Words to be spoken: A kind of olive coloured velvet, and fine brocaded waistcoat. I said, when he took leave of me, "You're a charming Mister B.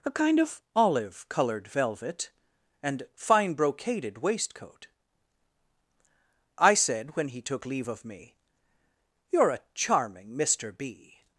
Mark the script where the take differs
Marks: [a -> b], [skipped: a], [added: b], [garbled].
A kind of olive coloured velvet, and fine brocaded waistcoat. I said, when he took leave of me, "You're a charming Mister B.